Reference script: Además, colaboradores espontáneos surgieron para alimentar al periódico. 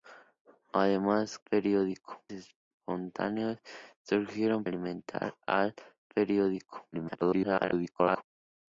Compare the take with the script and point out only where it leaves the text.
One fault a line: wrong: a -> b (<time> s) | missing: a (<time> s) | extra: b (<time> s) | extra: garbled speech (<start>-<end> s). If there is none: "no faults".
wrong: colaboradores -> periódico (1.5 s)
missing: para (4.6 s)
extra: garbled speech (6.9-8.2 s)